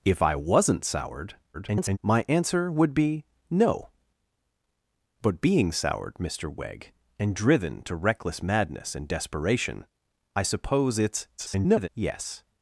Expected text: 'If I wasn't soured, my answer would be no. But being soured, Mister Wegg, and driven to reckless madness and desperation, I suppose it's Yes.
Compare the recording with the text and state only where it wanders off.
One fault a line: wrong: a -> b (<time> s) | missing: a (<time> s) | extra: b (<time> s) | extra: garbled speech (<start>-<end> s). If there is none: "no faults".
extra: garbled speech (1.5-2.0 s)
extra: garbled speech (11.4-11.9 s)